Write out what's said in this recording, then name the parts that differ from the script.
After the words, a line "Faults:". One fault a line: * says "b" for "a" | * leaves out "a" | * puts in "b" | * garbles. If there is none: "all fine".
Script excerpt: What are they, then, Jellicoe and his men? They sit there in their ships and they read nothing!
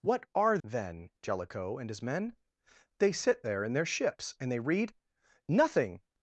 What are then, Jellicoe and his men? They sit there in their ships and they read nothing!
Faults:
* leaves out "they"